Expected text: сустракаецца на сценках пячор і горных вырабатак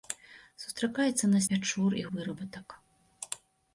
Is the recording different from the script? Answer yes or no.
yes